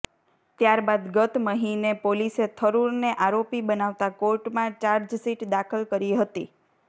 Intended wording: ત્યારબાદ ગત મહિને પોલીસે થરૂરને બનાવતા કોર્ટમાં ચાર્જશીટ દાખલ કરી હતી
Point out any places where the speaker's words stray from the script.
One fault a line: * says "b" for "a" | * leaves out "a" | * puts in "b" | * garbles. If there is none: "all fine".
* puts in "આરોપી"